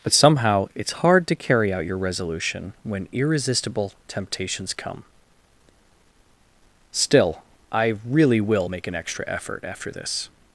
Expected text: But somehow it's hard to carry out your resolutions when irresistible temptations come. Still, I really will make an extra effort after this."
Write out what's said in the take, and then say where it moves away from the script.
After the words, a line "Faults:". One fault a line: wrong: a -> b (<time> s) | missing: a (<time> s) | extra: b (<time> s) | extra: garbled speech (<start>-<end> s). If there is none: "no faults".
But somehow it's hard to carry out your resolution when irresistible temptations come. Still, I really will make an extra effort after this."
Faults:
wrong: resolutions -> resolution (2.0 s)